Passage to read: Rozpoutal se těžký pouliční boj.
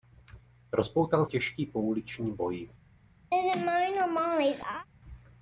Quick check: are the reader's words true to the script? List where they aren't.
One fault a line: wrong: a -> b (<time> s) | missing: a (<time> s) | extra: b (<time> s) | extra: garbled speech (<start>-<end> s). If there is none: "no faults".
missing: se (1.2 s)